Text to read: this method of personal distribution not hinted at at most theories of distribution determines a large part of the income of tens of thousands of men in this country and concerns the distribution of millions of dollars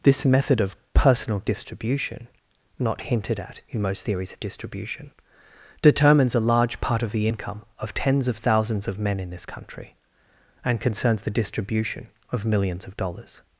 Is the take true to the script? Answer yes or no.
no